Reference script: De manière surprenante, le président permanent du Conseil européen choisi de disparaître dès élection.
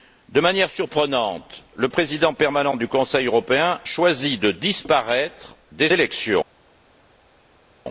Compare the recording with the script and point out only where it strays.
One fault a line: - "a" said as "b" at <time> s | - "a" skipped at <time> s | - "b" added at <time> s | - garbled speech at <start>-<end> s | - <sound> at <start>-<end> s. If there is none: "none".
none